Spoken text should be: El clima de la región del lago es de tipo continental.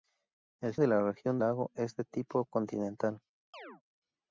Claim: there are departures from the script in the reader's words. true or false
true